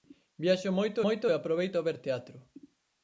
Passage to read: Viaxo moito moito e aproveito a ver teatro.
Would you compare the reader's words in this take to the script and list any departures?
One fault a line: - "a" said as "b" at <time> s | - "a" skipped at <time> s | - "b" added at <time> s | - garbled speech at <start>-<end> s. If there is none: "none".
none